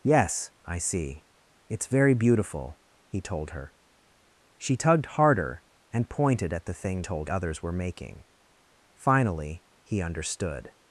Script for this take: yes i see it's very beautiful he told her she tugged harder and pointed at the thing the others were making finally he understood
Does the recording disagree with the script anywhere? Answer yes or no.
yes